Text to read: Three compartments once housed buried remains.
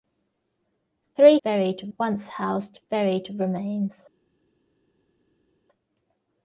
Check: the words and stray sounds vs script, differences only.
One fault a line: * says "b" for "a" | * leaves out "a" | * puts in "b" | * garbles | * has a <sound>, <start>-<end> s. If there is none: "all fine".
* says "buried" for "compartments"